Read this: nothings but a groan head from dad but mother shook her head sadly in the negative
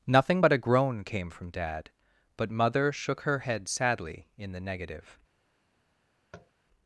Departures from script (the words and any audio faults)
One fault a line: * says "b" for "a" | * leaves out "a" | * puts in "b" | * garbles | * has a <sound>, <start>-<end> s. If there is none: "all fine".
* says "nothing" for "nothings"
* says "came" for "head"
* has a tap, 6.3-6.5 s